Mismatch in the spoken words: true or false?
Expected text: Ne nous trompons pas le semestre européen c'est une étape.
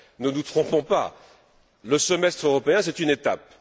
false